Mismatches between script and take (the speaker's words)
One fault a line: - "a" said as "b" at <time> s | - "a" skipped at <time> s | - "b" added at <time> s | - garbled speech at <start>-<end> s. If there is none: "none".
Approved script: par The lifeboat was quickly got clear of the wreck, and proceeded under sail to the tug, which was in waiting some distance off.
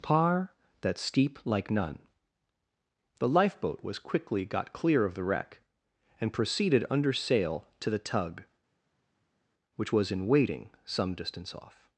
- "that steep like none" added at 0.8 s